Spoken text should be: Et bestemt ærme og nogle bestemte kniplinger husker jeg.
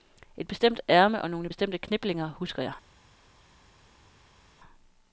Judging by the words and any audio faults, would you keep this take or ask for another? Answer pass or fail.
pass